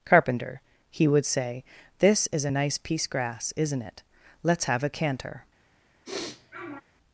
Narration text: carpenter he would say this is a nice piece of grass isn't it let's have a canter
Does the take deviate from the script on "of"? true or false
true